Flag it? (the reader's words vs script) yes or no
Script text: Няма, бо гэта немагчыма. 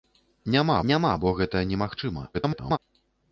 yes